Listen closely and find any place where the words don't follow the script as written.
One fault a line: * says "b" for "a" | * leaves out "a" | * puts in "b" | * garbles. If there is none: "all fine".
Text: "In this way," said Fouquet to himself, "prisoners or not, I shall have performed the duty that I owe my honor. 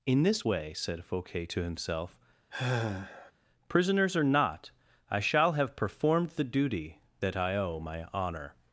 all fine